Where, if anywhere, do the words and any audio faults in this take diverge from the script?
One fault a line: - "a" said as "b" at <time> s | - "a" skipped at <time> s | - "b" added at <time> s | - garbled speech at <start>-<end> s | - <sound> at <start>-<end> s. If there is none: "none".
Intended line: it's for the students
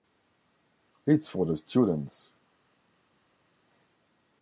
none